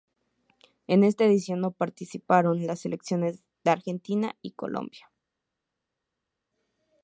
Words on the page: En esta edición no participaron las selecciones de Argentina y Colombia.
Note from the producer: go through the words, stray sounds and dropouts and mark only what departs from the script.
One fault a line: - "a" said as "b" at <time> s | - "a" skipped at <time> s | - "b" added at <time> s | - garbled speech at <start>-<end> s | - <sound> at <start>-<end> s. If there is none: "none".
none